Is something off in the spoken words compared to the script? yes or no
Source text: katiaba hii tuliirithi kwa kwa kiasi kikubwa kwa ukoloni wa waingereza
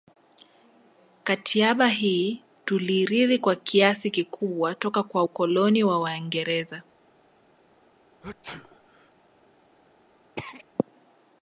yes